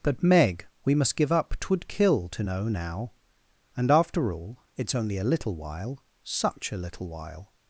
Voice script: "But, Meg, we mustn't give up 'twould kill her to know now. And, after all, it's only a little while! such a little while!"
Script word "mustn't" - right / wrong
wrong